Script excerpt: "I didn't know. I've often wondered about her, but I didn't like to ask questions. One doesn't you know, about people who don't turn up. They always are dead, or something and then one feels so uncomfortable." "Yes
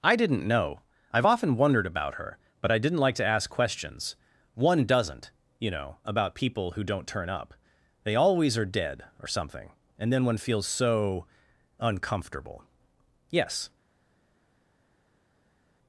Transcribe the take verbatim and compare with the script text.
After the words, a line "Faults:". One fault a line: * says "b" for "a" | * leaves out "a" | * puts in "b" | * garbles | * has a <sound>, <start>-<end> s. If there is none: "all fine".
"I didn't know. I've often wondered about her, but I didn't like to ask questions. One doesn't you know, about people who don't turn up. They always are dead, or something and then one feels so uncomfortable." "Yes
Faults:
all fine